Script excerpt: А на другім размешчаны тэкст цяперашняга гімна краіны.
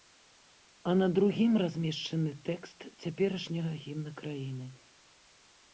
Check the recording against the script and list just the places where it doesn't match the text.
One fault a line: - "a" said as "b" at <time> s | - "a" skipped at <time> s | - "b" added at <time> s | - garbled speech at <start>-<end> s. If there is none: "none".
none